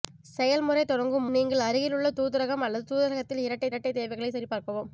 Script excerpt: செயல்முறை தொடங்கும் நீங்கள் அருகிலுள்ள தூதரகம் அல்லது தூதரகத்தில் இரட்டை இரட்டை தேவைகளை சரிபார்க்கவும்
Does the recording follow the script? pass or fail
pass